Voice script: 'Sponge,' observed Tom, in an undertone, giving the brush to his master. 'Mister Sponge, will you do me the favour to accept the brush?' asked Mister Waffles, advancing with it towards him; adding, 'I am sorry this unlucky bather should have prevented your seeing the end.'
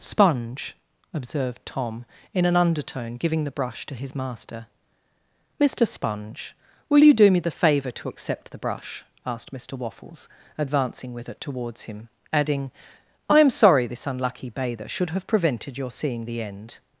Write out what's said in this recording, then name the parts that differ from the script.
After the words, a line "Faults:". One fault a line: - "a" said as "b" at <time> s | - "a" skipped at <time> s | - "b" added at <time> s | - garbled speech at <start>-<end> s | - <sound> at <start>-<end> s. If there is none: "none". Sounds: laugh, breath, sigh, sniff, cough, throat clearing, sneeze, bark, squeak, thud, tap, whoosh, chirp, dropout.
'Sponge,' observed Tom, in an undertone, giving the brush to his master. 'Mister Sponge, will you do me the favour to accept the brush?' asked Mister Waffles, advancing with it towards him; adding, 'I am sorry this unlucky bather should have prevented your seeing the end.'
Faults:
none